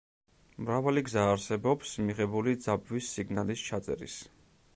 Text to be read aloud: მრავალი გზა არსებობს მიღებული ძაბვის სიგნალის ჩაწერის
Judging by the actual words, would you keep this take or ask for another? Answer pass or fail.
pass